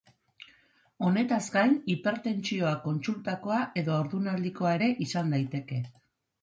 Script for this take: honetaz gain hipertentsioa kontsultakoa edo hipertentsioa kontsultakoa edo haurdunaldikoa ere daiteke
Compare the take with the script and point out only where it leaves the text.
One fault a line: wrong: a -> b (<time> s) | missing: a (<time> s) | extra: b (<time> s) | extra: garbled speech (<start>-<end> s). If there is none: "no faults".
missing: hipertentsioa kontsultakoa edo (4.0 s)
extra: izan (5.1 s)